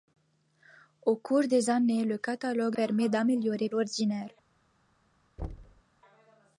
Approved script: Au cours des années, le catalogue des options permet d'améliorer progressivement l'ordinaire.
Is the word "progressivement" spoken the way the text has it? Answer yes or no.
no